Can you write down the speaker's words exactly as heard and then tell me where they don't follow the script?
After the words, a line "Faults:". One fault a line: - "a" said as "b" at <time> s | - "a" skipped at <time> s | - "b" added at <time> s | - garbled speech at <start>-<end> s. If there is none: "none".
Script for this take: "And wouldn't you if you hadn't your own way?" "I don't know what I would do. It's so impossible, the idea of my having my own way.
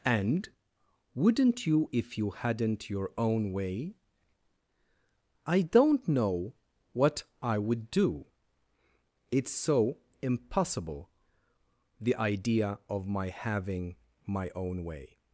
"And wouldn't you if you hadn't your own way?" "I don't know what I would do. It's so impossible, the idea of my having my own way.
Faults:
none